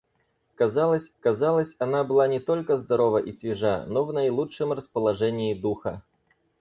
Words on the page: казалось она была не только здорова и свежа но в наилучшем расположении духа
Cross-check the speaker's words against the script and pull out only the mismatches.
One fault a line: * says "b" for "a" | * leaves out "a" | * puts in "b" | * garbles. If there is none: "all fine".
* puts in "казалось"